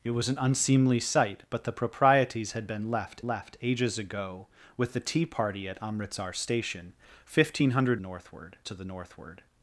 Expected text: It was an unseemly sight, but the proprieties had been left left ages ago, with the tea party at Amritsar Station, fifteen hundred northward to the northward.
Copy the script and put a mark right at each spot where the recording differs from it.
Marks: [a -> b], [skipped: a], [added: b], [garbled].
It was an unseemly sight, but the proprieties had been left left ages ago, with the tea party at Amritsar Station, fifteen hundred northward to the northward.